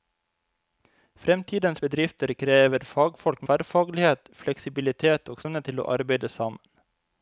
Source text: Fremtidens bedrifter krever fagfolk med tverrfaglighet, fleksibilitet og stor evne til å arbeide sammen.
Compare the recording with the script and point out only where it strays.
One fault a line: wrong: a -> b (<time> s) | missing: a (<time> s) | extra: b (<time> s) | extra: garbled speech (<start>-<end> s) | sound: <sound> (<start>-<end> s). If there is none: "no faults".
missing: med (3.4 s)
missing: stor (5.4 s)